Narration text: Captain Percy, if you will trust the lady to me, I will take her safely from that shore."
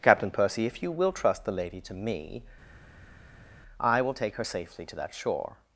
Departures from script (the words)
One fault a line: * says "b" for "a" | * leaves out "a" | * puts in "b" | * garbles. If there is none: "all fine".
* says "to" for "from"